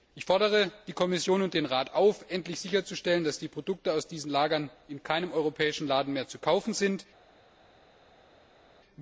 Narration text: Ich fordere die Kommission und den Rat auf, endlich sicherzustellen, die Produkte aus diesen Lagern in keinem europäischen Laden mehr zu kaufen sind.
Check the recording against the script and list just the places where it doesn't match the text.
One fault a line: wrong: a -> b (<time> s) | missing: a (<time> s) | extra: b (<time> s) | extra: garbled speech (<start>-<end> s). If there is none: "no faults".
extra: dass (3.2 s)